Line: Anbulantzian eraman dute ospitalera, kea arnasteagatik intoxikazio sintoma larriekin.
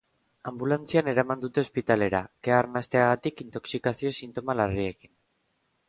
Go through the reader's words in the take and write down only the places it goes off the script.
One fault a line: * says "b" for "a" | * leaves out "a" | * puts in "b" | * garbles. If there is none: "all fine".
all fine